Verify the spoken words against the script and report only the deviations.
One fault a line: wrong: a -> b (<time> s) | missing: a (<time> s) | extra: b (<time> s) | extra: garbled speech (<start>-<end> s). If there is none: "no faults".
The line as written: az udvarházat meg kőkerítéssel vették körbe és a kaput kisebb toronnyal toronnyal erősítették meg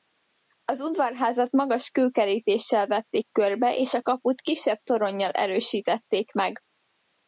wrong: meg -> magas (1.5 s)
missing: toronnyal (5.3 s)